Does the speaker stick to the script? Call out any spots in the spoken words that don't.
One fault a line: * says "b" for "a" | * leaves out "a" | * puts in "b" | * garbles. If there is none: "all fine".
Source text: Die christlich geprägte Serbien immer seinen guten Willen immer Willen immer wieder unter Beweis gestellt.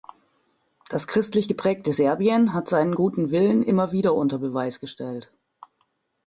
* says "Das" for "Die"
* says "hat" for "immer"
* leaves out "Willen immer"